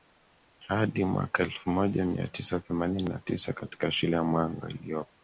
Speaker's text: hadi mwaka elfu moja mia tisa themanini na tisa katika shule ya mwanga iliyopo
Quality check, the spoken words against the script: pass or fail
pass